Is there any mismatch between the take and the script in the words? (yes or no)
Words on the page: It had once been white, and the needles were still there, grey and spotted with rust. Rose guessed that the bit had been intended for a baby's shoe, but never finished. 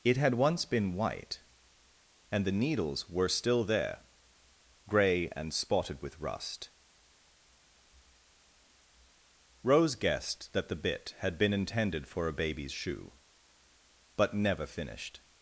no